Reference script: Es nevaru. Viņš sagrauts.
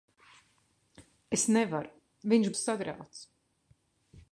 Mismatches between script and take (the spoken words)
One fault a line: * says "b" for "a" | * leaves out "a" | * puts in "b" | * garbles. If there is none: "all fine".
all fine